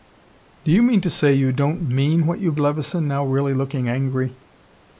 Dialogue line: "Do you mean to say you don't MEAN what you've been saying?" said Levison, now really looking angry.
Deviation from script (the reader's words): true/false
true